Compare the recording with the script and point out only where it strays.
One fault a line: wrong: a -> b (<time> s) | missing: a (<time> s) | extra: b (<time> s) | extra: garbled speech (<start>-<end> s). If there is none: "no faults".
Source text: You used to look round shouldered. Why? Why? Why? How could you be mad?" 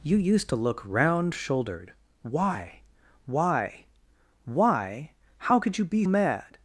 no faults